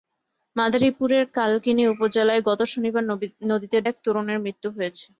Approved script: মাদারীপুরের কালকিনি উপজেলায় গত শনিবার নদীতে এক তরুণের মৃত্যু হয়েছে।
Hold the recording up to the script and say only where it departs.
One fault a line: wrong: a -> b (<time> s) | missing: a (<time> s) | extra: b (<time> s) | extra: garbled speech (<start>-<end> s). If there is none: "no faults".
no faults